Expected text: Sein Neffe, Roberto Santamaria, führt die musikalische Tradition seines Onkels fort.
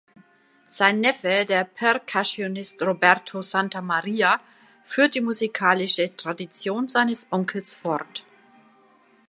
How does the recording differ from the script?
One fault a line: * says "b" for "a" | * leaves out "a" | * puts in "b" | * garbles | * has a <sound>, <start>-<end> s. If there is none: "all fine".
* puts in "der Percussionist"